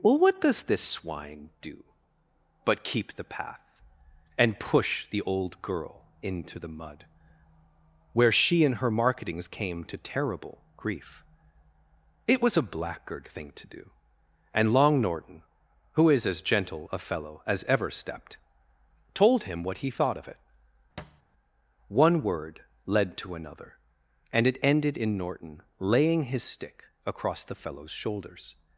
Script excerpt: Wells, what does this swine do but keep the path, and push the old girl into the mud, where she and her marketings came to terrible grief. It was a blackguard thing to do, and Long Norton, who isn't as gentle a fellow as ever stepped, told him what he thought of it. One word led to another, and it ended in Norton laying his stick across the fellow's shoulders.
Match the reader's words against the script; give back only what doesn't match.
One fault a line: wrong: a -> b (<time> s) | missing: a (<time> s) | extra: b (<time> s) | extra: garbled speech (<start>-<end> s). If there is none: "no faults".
wrong: Wells -> Well (0.0 s)
wrong: isn't -> is (16.1 s)